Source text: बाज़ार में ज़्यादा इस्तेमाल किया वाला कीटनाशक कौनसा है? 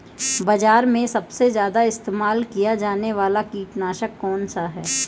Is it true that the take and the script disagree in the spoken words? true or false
true